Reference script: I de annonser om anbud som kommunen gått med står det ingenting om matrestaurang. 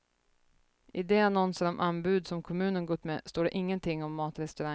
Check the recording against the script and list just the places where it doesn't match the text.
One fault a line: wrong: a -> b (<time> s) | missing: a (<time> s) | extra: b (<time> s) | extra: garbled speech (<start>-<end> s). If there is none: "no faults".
no faults